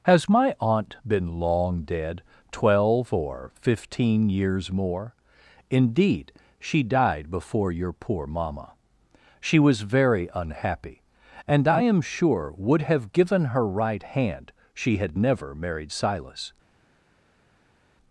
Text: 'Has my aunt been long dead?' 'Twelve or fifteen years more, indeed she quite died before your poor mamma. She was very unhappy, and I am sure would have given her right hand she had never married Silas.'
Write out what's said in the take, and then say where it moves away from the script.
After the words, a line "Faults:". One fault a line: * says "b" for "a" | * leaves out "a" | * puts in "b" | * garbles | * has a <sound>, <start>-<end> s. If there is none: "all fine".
'Has my aunt been long dead?' 'Twelve or fifteen years more, indeed she died before your poor mamma. She was very unhappy, and I am sure would have given her right hand she had never married Silas.'
Faults:
* leaves out "quite"